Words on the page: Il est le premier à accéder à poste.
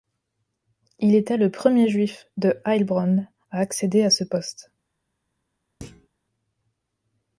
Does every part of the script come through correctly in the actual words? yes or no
no